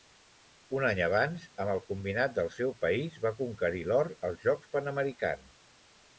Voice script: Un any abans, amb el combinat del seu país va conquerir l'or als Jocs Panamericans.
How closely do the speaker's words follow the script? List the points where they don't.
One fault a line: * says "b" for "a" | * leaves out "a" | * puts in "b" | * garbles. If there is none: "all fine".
all fine